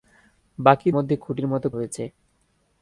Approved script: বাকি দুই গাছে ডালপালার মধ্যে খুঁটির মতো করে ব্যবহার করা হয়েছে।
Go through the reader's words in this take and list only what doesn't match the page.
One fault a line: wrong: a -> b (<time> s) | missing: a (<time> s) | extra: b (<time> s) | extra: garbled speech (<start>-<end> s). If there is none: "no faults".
missing: দুই গাছে ডালপালার (0.9 s)
missing: করে ব্যবহার করা (1.7 s)